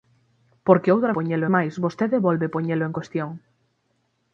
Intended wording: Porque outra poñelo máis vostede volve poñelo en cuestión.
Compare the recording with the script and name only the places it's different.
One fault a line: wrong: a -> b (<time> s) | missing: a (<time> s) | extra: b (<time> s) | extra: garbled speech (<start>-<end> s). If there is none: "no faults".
no faults